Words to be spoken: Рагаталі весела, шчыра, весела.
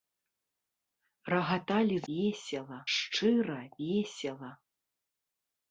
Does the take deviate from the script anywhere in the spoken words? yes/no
no